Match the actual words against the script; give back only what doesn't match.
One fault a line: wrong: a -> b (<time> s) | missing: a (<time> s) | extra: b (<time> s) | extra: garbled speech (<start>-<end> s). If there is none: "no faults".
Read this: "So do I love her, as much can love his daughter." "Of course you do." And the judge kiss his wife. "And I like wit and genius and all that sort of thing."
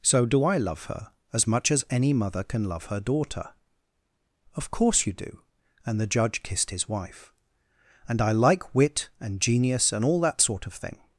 extra: as any mother (1.7 s)
wrong: his -> her (2.9 s)
wrong: kiss -> kissed (6.4 s)